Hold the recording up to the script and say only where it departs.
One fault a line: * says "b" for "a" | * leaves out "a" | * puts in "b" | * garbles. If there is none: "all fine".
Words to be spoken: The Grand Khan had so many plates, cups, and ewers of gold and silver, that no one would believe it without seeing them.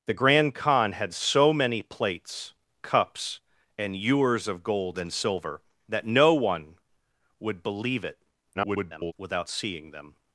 * garbles